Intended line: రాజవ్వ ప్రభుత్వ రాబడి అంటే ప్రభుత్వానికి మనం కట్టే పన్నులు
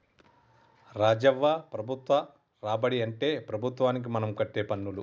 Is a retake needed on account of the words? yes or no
no